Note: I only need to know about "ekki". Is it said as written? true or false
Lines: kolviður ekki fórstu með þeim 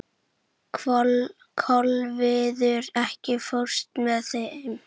true